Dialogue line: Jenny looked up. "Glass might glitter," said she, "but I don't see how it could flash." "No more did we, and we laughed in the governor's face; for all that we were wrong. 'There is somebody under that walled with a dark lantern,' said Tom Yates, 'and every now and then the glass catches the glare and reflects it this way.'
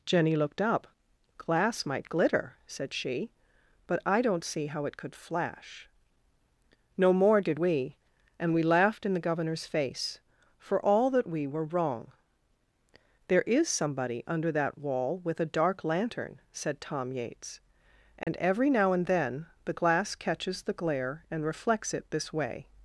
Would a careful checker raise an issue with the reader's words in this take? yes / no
yes